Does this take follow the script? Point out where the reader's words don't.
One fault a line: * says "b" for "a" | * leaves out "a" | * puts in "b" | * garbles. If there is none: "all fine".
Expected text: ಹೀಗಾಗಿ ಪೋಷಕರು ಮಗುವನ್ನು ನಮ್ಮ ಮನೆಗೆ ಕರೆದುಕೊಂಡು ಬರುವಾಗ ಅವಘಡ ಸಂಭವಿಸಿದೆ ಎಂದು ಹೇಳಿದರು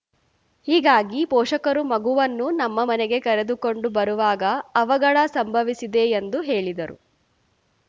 all fine